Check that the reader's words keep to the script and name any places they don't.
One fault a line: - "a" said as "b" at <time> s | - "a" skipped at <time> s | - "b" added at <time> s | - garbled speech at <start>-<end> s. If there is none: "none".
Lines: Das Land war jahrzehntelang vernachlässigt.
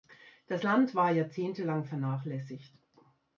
none